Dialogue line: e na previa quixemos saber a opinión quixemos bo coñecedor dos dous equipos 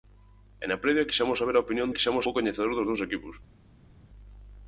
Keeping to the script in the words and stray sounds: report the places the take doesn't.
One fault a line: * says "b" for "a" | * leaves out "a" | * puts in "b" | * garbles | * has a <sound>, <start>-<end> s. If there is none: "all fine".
all fine